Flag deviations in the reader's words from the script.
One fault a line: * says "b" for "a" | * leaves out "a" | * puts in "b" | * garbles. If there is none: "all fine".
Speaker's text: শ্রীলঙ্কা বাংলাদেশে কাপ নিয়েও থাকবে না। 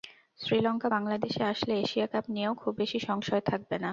* puts in "আসলে এশিয়া"
* puts in "খুব বেশি সংশয়"